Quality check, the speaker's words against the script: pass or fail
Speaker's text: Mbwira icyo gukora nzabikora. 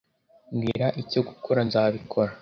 pass